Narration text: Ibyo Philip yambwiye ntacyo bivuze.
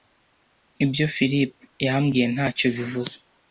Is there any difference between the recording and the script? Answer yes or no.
no